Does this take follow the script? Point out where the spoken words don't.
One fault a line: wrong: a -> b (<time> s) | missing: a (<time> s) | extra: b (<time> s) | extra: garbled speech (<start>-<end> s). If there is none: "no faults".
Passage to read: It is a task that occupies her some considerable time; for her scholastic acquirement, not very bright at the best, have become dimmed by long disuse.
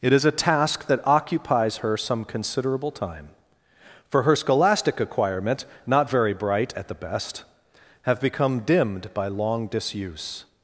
no faults